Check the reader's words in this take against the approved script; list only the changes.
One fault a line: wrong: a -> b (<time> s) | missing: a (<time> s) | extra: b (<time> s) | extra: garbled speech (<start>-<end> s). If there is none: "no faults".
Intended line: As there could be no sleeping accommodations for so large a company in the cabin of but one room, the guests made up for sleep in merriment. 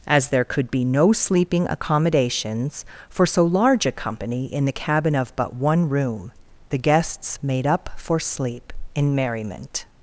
no faults